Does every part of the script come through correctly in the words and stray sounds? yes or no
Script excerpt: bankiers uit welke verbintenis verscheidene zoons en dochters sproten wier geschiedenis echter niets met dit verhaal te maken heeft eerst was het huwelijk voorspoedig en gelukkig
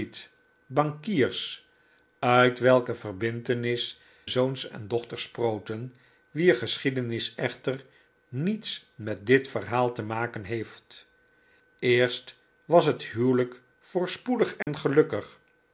no